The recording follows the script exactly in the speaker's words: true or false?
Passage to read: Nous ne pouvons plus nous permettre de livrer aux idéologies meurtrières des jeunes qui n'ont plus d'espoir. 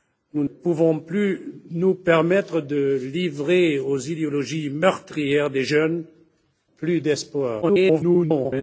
false